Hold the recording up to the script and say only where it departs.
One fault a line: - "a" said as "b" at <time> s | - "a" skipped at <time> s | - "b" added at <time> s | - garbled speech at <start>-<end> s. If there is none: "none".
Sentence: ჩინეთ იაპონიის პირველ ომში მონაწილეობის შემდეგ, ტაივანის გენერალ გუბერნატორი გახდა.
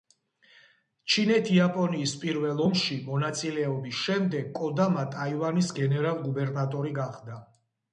- "კოდამა" added at 4.6 s